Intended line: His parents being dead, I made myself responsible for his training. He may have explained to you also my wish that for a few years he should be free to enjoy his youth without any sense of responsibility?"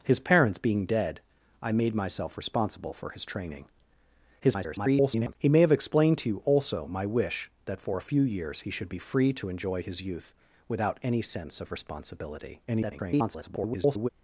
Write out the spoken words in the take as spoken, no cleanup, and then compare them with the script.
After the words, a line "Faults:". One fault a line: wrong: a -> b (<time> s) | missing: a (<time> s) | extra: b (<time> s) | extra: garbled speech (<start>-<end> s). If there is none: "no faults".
His parents being dead, I made myself responsible for his training. [garbled] He may have explained to you also my wish that for a few years he should be free to enjoy his youth without any sense of responsibility?" [garbled]
Faults:
extra: garbled speech (4.4-5.4 s)
extra: garbled speech (12.7-14.1 s)